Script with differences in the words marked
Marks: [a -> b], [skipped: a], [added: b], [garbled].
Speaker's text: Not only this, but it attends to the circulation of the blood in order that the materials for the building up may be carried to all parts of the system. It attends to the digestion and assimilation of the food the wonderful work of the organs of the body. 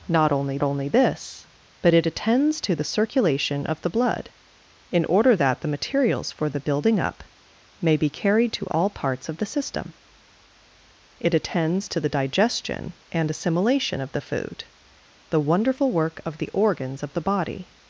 Not only [added: only] this, but it attends to the circulation of the blood in order that the materials for the building up may be carried to all parts of the system. It attends to the digestion and assimilation of the food the wonderful work of the organs of the body.